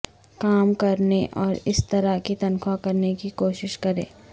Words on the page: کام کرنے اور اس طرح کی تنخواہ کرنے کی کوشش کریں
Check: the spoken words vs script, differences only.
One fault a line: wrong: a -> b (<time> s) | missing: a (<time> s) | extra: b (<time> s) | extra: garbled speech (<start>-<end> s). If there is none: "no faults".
no faults